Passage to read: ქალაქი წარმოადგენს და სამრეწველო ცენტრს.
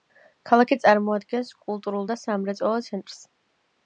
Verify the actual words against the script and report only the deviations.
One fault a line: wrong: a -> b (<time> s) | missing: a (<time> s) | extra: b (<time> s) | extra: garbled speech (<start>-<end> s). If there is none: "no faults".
extra: კულტურულ (1.7 s)